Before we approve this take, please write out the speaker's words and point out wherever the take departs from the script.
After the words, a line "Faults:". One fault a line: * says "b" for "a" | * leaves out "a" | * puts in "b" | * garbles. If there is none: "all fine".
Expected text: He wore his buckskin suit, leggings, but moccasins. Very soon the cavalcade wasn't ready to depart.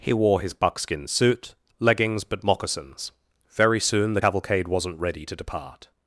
He wore his buckskin suit, leggings, but moccasins. Very soon the cavalcade wasn't ready to depart.
Faults:
all fine